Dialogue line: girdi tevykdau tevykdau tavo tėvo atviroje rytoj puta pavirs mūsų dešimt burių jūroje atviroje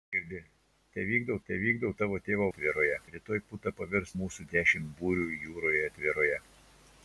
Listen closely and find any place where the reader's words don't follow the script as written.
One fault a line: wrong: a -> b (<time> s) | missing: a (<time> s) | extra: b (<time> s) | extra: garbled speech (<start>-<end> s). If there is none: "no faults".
no faults